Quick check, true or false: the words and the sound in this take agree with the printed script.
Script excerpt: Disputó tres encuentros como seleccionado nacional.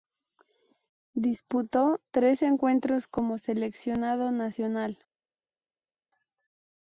true